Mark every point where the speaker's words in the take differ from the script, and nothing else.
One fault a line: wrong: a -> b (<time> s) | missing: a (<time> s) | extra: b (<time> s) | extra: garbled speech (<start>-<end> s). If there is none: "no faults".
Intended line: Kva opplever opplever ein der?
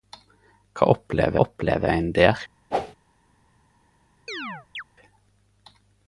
no faults